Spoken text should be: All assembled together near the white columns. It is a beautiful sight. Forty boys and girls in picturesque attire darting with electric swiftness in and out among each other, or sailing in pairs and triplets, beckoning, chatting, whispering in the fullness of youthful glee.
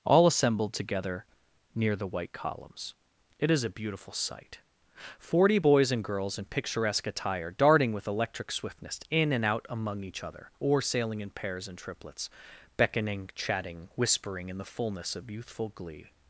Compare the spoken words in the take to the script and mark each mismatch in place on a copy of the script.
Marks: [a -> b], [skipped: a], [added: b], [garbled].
All assembled together near the white columns. It is a beautiful sight. Forty boys and girls in picturesque attire darting with electric swiftness in and out among each other, or sailing in pairs and triplets, beckoning, chatting, whispering in the fullness of youthful glee.